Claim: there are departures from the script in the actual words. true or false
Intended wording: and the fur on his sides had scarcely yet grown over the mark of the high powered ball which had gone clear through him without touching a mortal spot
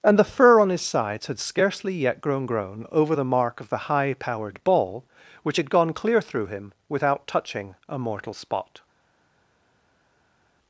true